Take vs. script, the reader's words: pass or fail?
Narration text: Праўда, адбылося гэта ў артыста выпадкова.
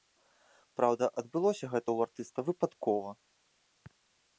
pass